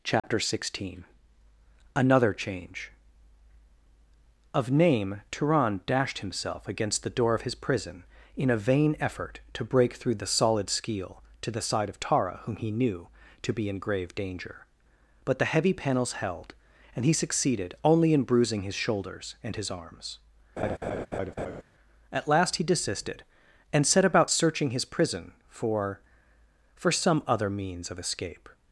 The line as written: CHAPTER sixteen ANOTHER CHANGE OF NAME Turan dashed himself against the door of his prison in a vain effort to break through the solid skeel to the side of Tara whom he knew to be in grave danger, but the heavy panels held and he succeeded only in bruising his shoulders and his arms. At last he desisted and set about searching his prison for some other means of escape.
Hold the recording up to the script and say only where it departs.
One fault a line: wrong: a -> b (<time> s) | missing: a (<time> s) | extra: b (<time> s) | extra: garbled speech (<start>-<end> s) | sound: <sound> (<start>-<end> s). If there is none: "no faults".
sound: dropout (0.2-0.2 s)
sound: laugh (20.6-21.6 s)
extra: for (26.8 s)